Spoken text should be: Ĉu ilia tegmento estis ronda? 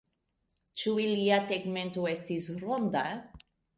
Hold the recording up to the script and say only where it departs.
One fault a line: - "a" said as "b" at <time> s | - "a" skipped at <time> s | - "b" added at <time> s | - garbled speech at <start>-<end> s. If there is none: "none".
none